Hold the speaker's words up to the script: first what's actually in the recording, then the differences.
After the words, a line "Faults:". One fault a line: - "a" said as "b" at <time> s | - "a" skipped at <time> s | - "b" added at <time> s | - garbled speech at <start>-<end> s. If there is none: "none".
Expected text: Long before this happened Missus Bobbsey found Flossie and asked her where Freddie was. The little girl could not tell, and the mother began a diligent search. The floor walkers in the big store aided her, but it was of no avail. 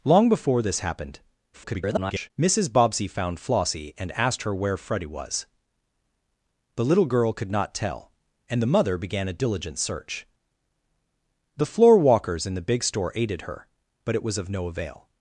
Long before this happened [garbled] Missus Bobbsey found Flossie and asked her where Freddie was. The little girl could not tell, and the mother began a diligent search. The floor walkers in the big store aided her, but it was of no avail.
Faults:
- garbled speech at 1.5-2.3 s